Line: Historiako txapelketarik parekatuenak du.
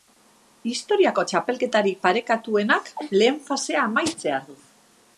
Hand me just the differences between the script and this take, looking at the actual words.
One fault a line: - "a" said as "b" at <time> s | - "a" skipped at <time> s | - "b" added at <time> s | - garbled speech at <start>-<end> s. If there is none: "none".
- "lehen fasea amaitzear" added at 3.2 s